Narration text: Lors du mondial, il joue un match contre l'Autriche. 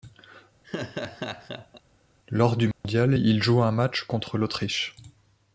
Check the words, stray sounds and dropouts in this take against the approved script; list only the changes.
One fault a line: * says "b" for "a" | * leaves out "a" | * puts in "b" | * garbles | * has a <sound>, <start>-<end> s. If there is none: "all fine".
* has a laugh, 0.6-1.8 s
* has a dropout, 2.7-2.8 s